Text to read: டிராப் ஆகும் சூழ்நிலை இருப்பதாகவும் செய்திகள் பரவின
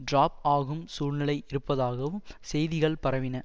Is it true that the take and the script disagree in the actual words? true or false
false